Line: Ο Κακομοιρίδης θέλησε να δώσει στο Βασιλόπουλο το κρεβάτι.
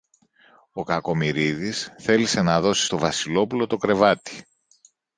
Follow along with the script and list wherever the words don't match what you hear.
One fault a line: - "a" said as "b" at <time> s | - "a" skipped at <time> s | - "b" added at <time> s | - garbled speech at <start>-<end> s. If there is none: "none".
none